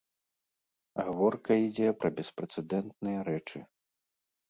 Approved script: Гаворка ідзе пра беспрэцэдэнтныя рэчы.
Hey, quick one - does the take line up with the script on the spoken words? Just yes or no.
yes